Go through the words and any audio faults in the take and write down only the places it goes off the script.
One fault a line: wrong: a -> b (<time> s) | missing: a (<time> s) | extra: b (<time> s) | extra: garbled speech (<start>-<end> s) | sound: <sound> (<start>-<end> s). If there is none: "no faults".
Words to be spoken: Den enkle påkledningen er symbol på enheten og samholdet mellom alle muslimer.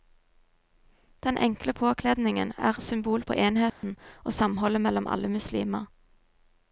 sound: dropout (3.7-3.8 s)